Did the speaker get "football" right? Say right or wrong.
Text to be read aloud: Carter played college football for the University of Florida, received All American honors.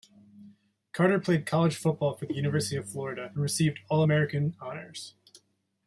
right